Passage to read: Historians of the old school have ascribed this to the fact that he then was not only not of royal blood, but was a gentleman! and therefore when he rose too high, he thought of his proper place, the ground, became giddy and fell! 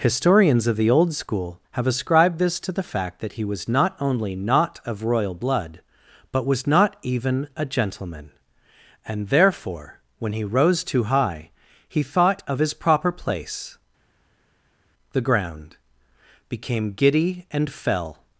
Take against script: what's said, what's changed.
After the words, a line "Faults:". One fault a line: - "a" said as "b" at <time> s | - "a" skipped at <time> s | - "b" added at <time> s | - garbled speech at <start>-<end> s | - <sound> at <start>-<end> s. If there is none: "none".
Historians of the old school have ascribed this to the fact that he was not only not of royal blood, but was not even a gentleman! and therefore when he rose too high, he thought of his proper place, the ground, became giddy and fell!
Faults:
- "then" skipped at 3.4 s
- "not even" added at 6.7 s